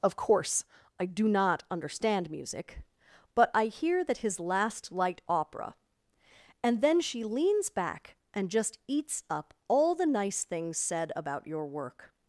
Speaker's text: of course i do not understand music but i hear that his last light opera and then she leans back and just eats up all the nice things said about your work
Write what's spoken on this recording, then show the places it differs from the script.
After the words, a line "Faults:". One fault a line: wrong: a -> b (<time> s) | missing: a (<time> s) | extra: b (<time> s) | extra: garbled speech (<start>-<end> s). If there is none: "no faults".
of course i do not understand music but i hear that his last light opera and then she leans back and just eats up all the nice things said about your work
Faults:
no faults